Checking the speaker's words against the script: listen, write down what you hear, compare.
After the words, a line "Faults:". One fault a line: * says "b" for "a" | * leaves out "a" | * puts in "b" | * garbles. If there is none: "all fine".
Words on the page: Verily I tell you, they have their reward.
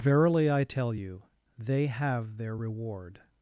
Verily I tell you, they have their reward.
Faults:
all fine